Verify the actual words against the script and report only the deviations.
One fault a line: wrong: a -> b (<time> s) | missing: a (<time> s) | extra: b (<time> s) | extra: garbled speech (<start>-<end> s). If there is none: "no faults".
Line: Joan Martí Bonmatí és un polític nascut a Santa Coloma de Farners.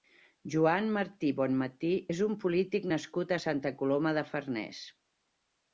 no faults